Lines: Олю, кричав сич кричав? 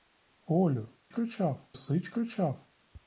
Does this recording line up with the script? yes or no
yes